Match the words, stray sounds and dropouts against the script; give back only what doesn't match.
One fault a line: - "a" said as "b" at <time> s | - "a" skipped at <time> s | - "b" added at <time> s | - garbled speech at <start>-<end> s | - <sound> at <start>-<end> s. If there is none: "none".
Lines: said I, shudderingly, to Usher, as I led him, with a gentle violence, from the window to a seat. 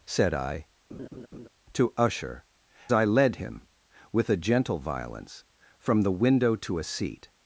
- "shudderingly" skipped at 0.7 s
- laugh at 0.9-1.5 s
- "as" skipped at 2.4 s